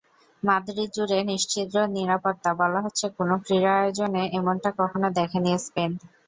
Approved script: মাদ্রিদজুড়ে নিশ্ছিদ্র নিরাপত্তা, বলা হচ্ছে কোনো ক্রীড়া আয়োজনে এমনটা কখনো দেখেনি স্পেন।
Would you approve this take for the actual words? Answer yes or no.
yes